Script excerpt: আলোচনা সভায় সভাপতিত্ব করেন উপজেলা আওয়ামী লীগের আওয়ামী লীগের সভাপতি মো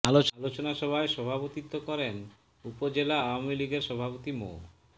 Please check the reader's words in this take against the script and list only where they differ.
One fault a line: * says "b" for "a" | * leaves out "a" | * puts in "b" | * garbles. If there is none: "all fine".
* leaves out "আওয়ামী লীগের"